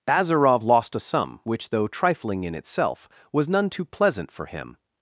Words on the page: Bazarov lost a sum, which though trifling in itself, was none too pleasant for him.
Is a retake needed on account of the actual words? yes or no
no